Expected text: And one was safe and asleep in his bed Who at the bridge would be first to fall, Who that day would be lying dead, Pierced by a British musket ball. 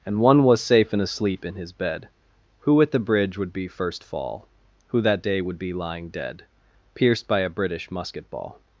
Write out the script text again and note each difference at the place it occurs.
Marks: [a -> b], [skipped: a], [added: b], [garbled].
And one was safe and asleep in his bed Who at the bridge would be first [skipped: to] fall, Who that day would be lying dead, Pierced by a British musket ball.